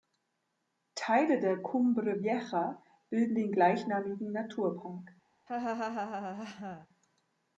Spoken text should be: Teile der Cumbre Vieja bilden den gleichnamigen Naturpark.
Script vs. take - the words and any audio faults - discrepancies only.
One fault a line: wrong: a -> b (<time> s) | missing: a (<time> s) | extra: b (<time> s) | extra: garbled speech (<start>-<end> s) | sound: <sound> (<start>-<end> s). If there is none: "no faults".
sound: laugh (5.5-6.9 s)